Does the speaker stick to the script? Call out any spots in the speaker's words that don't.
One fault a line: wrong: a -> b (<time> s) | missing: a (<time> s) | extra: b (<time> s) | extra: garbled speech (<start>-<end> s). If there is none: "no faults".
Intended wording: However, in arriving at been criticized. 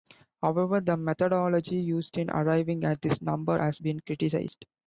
extra: the methodology used (0.8 s)
extra: this number has (3.0 s)